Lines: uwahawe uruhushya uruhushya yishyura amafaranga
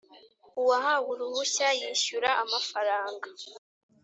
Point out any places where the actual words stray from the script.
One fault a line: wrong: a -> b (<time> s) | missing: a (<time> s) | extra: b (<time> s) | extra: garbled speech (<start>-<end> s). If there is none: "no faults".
missing: uruhushya (1.7 s)